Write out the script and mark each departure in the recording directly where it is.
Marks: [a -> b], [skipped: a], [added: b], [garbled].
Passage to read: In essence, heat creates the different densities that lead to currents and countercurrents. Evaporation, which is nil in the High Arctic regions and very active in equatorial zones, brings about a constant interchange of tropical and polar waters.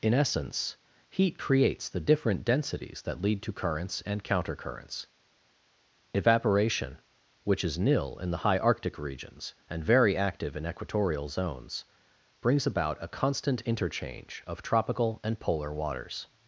In essence, heat creates the different densities that lead to currents and countercurrents. Evaporation, which is nil in the High Arctic regions and very active in equatorial zones, brings about a constant interchange of tropical and polar waters.